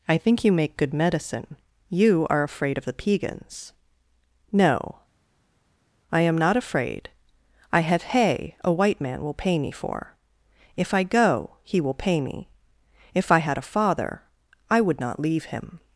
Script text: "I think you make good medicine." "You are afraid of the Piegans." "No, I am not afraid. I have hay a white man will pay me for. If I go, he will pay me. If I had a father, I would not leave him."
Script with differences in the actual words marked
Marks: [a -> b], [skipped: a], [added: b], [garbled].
"I think you make good medicine." "You are afraid of the Piegans." "No, I am not afraid. I have hay a white man will pay me for. If I go, he will pay me. If I had a father, I would not leave him."